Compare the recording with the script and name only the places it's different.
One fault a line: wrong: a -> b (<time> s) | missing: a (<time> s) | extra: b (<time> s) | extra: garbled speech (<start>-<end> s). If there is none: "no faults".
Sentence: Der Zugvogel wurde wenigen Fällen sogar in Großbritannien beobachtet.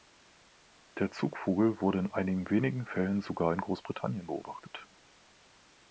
extra: in einigen (2.0 s)